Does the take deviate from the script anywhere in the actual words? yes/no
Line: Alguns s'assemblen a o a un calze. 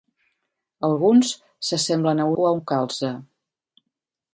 no